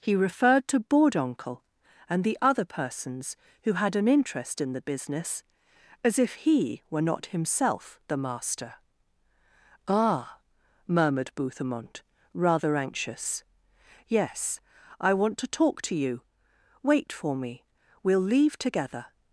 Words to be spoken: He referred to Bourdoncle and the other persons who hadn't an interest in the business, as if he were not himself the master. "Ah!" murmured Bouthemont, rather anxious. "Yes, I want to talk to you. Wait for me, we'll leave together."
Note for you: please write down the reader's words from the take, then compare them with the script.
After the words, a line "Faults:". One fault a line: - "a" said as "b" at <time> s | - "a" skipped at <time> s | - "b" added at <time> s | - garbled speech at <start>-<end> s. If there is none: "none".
He referred to Bourdoncle and the other persons who had an interest in the business, as if he were not himself the master. "Ah!" murmured Bouthemont, rather anxious. "Yes, I want to talk to you. Wait for me, we'll leave together."
Faults:
- "hadn't" said as "had" at 3.7 s